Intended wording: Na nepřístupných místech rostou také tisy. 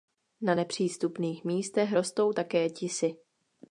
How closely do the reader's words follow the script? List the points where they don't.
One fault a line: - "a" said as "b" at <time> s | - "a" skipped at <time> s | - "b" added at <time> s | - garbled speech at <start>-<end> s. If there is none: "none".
none